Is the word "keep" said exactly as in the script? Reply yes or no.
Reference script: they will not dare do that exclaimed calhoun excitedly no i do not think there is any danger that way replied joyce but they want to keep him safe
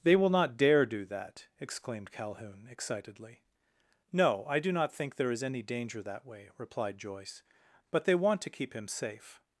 yes